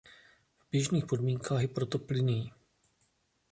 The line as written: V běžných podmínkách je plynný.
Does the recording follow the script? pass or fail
fail